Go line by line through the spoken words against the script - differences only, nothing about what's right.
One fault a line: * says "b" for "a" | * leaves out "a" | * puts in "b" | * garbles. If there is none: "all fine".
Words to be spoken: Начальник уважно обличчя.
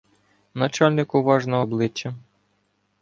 all fine